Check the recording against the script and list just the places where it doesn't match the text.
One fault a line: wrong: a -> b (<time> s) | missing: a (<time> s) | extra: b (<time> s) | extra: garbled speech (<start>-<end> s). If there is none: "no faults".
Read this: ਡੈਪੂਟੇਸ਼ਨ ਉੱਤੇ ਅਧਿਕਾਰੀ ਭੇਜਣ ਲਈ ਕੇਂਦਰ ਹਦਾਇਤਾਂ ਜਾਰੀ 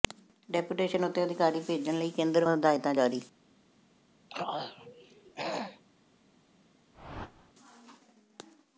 no faults